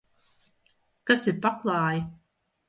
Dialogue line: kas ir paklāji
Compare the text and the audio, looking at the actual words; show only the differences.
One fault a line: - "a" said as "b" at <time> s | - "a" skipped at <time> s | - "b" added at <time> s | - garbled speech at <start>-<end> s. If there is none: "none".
none